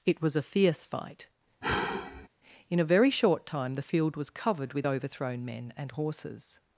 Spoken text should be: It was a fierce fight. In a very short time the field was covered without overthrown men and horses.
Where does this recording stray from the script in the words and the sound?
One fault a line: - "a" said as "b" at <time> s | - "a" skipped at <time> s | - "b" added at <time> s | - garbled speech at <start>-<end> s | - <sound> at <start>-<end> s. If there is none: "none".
- sigh at 1.6-2.3 s
- "without" said as "with" at 4.7 s